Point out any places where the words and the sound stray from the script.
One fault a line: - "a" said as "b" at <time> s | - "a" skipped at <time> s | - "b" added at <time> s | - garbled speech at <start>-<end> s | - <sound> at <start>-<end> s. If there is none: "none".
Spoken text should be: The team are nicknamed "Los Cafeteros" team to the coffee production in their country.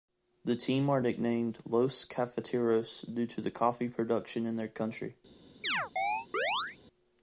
- "team" said as "due" at 3.1 s
- chirp at 5.6-6.8 s